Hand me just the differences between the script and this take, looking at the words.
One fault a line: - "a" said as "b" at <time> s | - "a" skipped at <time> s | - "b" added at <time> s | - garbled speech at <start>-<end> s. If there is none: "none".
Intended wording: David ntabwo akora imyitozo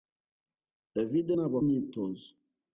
- "akora" skipped at 1.6 s